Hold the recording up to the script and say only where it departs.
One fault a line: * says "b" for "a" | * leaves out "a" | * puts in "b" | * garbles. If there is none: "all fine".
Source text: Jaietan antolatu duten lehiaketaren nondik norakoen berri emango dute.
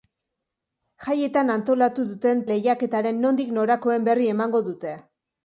all fine